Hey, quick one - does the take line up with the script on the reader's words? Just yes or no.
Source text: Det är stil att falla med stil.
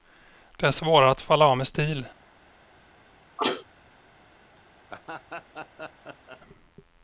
no